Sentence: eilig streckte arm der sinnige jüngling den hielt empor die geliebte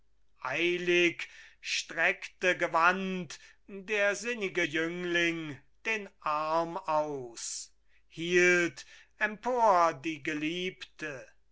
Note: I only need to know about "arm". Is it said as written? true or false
false